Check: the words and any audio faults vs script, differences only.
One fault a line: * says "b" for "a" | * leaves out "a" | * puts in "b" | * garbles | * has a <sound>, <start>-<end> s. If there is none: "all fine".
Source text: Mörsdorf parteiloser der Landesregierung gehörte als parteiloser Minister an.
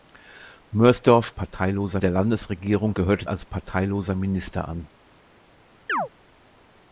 * has a chirp, 5.9-6.1 s